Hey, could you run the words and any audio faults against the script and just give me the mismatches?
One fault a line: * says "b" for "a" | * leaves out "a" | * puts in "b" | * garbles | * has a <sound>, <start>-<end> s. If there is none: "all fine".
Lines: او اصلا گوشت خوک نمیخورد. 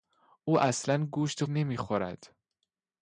* leaves out "خوک"